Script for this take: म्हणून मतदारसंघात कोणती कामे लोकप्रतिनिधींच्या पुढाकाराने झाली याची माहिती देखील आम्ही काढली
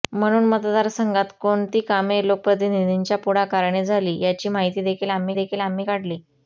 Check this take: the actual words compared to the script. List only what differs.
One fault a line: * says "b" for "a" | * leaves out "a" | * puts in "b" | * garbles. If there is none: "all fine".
* puts in "देखील आम्ही"